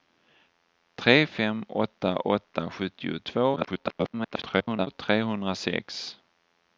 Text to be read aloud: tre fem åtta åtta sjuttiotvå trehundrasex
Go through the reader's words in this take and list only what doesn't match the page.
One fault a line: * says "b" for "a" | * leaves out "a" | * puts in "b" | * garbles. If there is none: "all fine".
* garbles